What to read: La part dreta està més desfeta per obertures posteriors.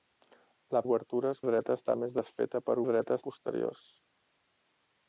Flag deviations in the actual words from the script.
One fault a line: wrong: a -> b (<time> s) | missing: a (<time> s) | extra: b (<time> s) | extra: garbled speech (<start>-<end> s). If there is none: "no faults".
wrong: part -> obertures (0.8 s)
wrong: obertures -> dreta (2.9 s)